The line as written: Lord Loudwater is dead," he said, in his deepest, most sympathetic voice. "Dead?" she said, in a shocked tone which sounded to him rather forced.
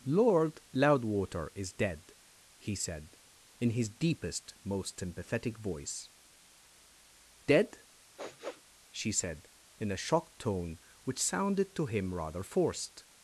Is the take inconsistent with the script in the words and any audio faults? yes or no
yes